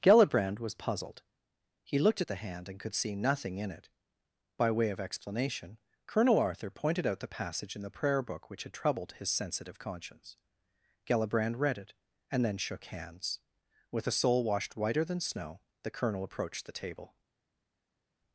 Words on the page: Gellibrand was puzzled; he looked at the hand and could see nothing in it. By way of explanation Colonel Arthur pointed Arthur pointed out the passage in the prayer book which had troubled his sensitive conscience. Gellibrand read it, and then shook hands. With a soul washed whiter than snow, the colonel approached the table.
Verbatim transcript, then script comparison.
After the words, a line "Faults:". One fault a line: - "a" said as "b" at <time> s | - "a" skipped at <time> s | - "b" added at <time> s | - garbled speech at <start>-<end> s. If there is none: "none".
Gellibrand was puzzled; he looked at the hand and could see nothing in it. By way of explanation Colonel Arthur pointed out the passage in the prayer book which had troubled his sensitive conscience. Gellibrand read it, and then shook hands. With a soul washed whiter than snow, the colonel approached the table.
Faults:
- "Arthur pointed" skipped at 7.0 s